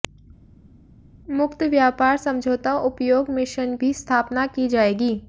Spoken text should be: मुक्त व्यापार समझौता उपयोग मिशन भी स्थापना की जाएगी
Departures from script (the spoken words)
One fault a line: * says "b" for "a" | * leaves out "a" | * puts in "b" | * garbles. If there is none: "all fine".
all fine